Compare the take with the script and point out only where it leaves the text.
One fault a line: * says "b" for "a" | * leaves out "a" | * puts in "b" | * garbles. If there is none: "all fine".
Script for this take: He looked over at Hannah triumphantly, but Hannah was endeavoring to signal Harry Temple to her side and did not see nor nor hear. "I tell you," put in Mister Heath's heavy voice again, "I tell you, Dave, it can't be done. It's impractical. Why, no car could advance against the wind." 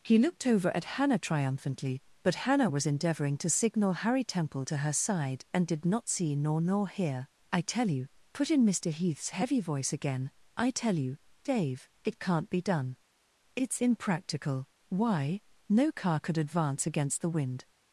all fine